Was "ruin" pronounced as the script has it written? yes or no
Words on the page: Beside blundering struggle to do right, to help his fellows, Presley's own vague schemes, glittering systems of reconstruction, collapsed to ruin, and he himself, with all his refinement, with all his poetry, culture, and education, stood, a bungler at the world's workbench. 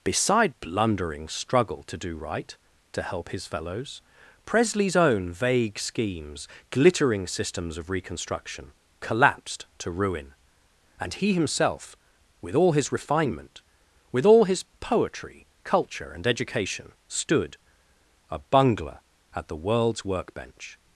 yes